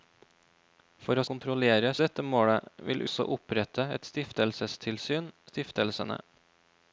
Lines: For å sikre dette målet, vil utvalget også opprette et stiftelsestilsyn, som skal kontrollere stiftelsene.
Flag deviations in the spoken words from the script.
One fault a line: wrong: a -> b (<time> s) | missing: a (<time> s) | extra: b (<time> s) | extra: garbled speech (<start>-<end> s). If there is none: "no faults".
wrong: sikre -> kontrollere (1.3 s)
missing: utvalget (3.0 s)
missing: som skal kontrollere (5.3 s)